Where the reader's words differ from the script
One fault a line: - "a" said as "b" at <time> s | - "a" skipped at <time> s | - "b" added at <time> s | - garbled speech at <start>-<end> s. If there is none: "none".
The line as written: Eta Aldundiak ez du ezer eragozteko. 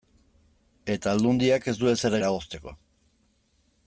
none